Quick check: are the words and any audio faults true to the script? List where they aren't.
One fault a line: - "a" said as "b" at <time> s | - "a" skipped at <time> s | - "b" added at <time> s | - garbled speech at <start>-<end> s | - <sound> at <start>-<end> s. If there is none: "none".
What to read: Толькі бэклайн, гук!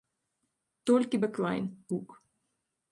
none